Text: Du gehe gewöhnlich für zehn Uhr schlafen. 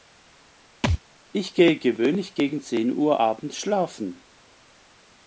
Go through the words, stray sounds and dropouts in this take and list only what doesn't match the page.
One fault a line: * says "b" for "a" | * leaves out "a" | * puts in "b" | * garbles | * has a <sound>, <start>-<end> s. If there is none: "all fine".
* has a thud, 0.8-1.0 s
* says "Ich" for "Du"
* says "gegen" for "für"
* puts in "abends"